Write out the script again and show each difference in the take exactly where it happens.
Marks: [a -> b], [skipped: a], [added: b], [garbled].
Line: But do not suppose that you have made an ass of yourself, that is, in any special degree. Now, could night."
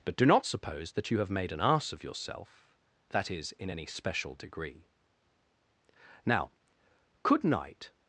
But do not suppose that you have made an ass of yourself, that is, in any special degree. Now, could night."